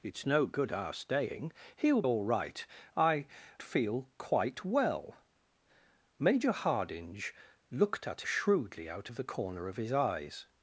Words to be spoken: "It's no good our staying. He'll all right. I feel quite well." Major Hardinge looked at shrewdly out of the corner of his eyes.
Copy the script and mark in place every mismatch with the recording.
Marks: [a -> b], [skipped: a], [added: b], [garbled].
"It's no good our staying. He'll all right. I feel quite well." Major Hardinge looked at shrewdly out of the corner of his eyes.